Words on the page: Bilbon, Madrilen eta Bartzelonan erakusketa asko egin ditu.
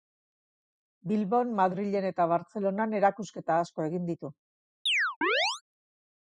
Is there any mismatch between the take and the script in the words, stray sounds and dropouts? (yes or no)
yes